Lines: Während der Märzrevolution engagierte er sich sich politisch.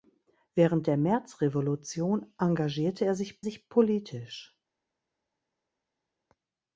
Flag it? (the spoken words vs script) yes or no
no